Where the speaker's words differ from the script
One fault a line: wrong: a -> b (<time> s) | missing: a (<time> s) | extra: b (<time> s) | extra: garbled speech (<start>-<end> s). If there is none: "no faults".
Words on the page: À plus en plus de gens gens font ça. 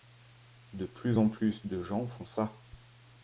wrong: À -> De (0.7 s)
missing: gens (2.1 s)